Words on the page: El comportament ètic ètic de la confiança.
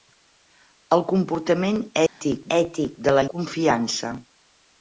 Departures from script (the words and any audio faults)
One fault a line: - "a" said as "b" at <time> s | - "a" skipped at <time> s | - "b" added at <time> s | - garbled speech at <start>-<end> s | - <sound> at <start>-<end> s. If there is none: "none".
- dropout at 2.1-2.2 s